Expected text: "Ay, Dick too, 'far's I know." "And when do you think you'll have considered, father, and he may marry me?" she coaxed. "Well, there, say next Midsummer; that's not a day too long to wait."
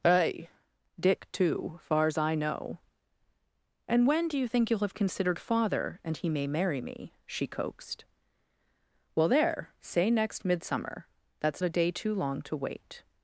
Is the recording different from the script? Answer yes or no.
yes